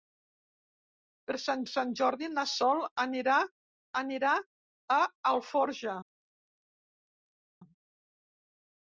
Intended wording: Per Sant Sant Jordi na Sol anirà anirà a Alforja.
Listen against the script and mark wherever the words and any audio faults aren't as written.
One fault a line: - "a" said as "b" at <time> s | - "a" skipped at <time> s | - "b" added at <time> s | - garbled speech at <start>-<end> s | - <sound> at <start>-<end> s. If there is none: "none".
none